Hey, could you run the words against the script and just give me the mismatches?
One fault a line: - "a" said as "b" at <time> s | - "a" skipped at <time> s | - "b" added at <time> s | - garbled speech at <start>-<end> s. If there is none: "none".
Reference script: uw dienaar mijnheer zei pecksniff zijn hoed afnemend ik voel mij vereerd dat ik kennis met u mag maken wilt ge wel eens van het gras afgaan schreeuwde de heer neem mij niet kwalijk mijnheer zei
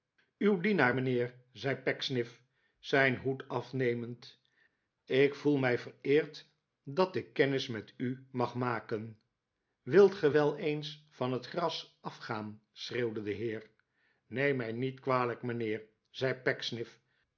none